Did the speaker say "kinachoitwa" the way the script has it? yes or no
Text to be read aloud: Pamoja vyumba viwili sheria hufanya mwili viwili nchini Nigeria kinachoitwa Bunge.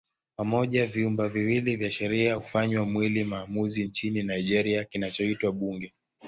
yes